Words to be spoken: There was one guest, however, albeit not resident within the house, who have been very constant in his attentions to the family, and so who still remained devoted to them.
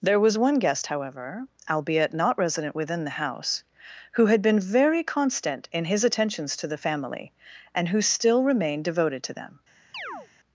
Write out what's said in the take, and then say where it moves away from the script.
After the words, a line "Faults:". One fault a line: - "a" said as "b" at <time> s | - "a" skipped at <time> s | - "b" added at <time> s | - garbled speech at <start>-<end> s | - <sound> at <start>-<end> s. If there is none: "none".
There was one guest, however, albeit not resident within the house, who had been very constant in his attentions to the family, and who still remained devoted to them.
Faults:
- "have" said as "had" at 4.2 s
- "so" skipped at 7.9 s
- chirp at 9.9-10.3 s